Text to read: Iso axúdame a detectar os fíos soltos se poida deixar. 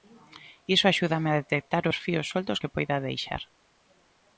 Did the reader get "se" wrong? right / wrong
wrong